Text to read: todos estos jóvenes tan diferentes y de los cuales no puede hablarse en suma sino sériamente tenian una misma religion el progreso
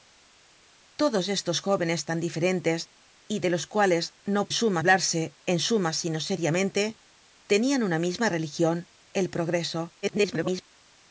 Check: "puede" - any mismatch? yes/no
yes